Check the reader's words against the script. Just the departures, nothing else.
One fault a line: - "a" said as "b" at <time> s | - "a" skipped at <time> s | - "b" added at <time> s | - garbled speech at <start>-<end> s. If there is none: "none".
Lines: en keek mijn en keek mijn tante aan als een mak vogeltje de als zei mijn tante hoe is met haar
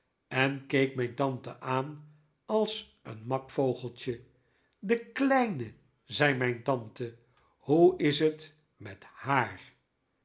- "en keek mijn" skipped at 1.1 s
- "als" said as "kleine" at 5.0 s
- "het" added at 8.2 s